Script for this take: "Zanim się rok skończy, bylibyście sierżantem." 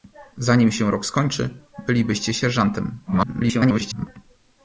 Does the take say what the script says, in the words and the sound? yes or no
no